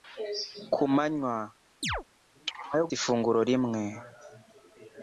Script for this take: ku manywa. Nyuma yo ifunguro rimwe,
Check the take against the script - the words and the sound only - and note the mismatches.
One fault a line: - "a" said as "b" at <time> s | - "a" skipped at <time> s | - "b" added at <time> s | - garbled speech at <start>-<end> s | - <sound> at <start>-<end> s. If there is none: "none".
- chirp at 1.8-2.0 s